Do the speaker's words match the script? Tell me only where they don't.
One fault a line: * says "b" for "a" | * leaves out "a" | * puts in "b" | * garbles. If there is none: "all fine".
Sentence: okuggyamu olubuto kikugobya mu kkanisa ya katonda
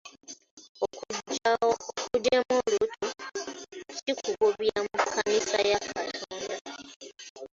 all fine